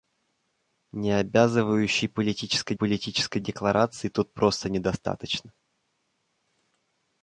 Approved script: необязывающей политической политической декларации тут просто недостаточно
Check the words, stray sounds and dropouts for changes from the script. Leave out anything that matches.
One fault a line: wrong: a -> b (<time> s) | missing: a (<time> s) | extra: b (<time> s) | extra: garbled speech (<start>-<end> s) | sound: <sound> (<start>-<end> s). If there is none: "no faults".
no faults